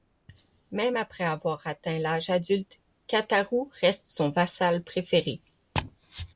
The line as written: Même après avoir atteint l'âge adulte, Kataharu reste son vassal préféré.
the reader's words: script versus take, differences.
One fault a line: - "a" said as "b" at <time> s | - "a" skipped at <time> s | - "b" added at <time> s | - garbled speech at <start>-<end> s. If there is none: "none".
none